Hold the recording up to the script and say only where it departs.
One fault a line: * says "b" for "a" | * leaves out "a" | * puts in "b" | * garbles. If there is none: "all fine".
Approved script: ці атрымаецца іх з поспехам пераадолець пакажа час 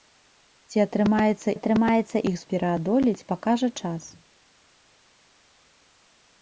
* puts in "атрымаецца"
* leaves out "поспехам"